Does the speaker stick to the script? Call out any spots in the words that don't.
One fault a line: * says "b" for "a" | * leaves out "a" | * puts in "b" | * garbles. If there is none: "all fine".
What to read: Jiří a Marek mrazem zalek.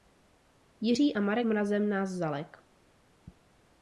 * puts in "nás"